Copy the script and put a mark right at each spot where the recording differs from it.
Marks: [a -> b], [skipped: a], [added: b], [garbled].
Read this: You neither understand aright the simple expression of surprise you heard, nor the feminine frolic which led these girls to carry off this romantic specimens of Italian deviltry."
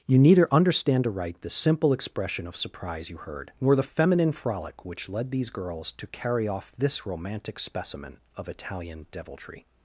You neither understand aright the simple expression of surprise you heard, nor the feminine frolic which led these girls to carry off this romantic [specimens -> specimen] of Italian deviltry."